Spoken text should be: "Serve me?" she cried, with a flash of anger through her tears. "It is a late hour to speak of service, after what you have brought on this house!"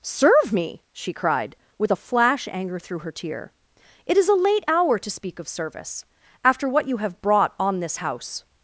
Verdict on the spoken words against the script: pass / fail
fail